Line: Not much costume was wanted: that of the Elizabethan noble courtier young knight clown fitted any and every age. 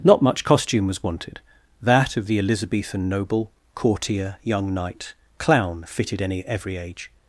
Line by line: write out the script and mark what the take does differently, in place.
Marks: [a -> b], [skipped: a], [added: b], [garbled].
Not much costume was wanted: that of the Elizabethan noble courtier young knight clown fitted any [skipped: and] every age.